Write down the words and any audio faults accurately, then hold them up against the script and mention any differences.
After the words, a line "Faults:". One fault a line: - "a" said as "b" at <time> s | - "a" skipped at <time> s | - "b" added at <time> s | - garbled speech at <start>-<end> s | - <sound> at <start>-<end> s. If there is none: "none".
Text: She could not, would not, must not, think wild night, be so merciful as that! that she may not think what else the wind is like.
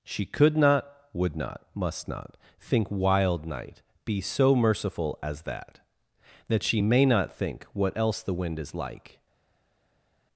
She could not, would not, must not, think wild night, be so merciful as that! that she may not think what else the wind is like.
Faults:
none